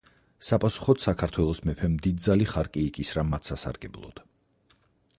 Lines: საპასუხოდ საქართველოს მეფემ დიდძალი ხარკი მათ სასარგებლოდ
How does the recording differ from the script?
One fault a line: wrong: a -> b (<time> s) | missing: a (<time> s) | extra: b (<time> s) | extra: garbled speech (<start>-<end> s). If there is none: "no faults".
extra: იკისრა (2.9 s)